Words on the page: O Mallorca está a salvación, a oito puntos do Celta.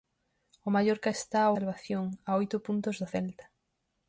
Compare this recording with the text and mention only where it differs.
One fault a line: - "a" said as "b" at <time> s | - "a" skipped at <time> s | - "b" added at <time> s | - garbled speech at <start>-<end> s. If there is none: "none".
none